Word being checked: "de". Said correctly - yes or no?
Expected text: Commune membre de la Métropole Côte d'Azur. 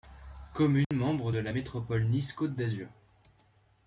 yes